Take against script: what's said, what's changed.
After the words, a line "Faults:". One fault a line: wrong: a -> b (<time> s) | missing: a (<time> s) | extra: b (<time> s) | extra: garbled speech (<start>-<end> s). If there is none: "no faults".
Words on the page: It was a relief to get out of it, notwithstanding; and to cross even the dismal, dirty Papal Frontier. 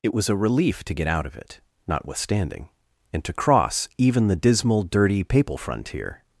It was a relief to get out of it, notwithstanding; and to cross even the dismal, dirty Papal Frontier.
Faults:
no faults